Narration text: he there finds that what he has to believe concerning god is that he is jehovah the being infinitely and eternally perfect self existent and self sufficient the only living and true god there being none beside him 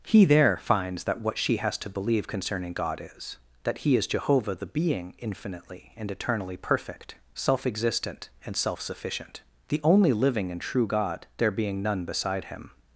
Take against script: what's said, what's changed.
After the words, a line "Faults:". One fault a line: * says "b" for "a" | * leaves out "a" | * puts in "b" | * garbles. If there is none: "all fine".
he there finds that what she has to believe concerning god is that he is jehovah the being infinitely and eternally perfect self existent and self sufficient the only living and true god there being none beside him
Faults:
* says "she" for "he"